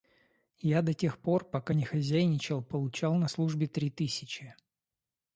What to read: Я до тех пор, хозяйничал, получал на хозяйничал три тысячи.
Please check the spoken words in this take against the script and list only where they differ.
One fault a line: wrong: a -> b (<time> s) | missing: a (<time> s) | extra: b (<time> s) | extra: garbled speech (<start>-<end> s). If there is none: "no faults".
extra: пока не (1.4 s)
wrong: хозяйничал -> службе (3.3 s)